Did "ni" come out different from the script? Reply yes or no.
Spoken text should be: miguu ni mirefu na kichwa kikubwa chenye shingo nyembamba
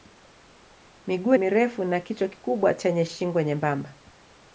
yes